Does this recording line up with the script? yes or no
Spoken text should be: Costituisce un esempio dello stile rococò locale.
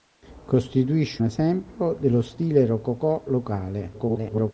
no